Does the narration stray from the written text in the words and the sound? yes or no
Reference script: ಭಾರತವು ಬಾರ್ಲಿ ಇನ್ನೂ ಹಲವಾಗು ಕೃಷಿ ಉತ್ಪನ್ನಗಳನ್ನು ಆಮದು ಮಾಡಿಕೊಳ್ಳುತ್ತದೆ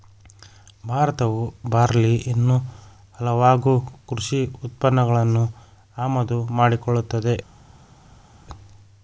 no